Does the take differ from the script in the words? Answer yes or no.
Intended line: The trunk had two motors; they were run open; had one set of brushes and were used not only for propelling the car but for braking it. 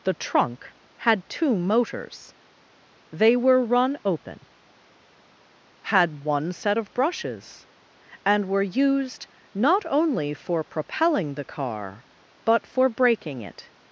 no